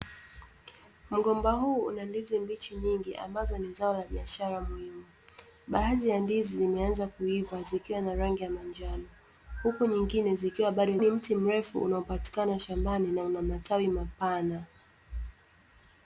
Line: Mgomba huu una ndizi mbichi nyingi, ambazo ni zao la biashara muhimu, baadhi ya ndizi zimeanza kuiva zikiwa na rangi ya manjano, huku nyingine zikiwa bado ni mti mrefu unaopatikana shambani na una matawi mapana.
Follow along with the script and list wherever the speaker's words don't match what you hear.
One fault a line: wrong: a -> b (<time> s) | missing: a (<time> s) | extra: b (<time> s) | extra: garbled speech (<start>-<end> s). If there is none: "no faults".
no faults